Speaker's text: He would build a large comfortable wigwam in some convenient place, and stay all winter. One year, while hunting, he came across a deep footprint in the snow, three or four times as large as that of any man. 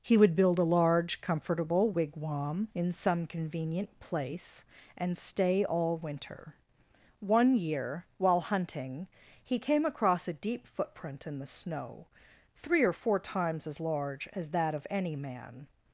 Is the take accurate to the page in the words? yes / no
yes